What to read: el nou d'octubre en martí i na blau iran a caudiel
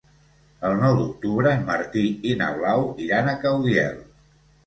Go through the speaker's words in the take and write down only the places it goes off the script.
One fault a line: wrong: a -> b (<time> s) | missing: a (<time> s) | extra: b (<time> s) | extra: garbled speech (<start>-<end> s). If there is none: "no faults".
no faults